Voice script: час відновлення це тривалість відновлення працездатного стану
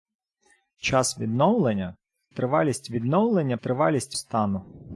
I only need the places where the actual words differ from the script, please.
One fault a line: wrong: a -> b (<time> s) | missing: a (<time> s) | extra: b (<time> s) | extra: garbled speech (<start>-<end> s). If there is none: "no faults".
missing: це (2.0 s)
wrong: працездатного -> тривалість (3.6 s)